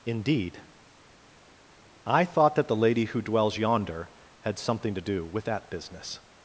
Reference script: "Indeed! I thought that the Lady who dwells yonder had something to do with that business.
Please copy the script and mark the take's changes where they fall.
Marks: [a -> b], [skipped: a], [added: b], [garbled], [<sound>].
"Indeed! I thought that the Lady who dwells yonder had something to do with that business.